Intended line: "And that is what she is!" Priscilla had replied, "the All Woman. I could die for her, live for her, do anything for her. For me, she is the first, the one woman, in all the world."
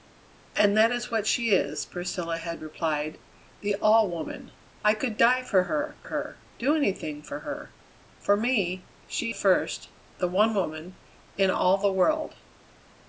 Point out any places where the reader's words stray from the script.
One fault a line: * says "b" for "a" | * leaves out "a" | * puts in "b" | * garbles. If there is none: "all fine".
* leaves out "live for"
* leaves out "is the"